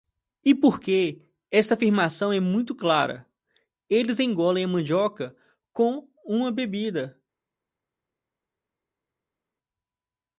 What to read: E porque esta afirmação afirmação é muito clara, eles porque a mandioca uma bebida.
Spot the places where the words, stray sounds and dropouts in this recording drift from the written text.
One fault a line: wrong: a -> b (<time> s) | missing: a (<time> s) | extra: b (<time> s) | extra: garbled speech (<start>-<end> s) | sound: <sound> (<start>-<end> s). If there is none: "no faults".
missing: afirmação (2.3 s)
wrong: porque -> engolem (4.2 s)
extra: com (5.7 s)